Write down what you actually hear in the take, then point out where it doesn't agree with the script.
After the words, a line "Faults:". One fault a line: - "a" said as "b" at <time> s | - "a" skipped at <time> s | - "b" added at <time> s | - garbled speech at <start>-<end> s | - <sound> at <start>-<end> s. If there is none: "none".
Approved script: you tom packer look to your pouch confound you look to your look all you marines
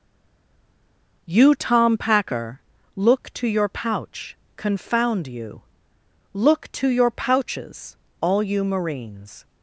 you tom packer look to your pouch confound you look to your pouches all you marines
Faults:
- "look" said as "pouches" at 7.1 s